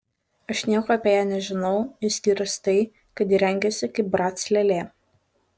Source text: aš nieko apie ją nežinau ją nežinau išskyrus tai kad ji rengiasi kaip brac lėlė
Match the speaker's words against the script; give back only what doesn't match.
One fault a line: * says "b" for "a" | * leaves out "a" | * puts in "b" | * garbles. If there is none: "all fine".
* leaves out "ją nežinau"